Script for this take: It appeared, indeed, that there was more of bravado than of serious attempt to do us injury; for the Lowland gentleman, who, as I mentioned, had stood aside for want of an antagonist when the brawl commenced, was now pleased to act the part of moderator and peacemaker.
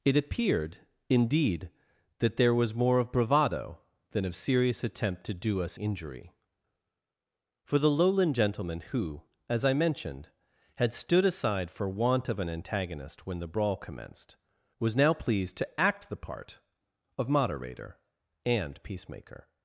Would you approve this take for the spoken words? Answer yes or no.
yes